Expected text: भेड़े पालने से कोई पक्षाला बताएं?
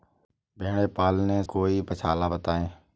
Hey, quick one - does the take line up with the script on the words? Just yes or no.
no